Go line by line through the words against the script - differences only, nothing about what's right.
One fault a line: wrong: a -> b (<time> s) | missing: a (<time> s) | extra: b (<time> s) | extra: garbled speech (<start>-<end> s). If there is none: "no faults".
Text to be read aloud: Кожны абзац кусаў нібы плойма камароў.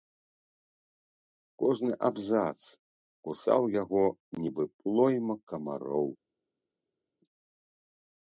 extra: яго (3.8 s)